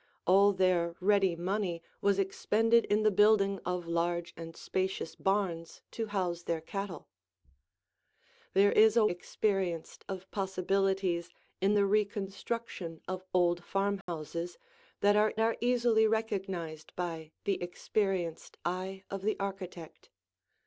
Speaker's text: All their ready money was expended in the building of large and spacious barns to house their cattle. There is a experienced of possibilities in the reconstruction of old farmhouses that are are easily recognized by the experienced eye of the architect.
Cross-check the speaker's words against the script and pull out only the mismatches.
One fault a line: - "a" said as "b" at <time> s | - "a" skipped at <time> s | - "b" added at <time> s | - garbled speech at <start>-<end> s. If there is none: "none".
none